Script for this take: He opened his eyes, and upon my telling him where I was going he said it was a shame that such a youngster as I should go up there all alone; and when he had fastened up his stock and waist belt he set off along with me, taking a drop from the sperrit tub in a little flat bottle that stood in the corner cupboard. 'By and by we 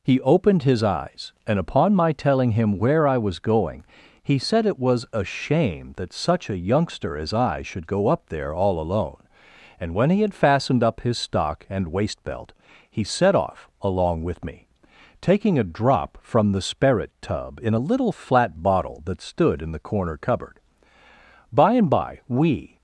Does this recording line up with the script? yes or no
yes